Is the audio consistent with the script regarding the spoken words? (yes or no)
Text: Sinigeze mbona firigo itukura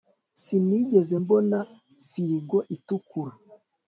yes